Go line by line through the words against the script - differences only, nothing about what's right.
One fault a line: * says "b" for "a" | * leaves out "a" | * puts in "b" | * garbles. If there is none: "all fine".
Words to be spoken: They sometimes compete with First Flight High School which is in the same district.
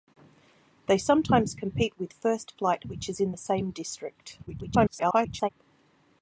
* leaves out "High School"
* garbles